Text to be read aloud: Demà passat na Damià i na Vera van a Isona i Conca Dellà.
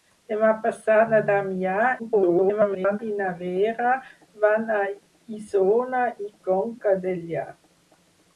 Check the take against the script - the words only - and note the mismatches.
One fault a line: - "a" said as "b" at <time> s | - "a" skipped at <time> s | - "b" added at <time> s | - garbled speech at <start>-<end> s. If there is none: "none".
- garbled speech at 2.0-3.0 s